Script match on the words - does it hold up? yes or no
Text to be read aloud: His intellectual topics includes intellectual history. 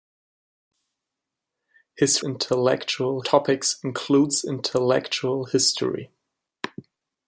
yes